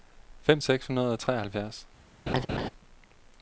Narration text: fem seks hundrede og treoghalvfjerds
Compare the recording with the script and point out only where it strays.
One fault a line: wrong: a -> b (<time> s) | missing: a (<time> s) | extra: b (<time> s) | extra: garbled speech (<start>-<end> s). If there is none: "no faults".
no faults